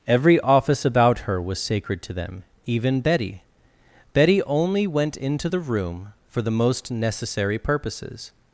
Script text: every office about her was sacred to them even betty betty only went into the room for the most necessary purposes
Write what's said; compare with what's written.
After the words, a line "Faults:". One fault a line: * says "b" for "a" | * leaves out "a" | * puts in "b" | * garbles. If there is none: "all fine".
every office about her was sacred to them even betty betty only went into the room for the most necessary purposes
Faults:
all fine